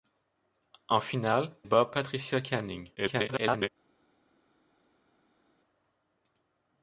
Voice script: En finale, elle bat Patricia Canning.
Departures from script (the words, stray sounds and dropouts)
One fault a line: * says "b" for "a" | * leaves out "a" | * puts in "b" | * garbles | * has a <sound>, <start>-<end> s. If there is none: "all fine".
* leaves out "elle"
* garbles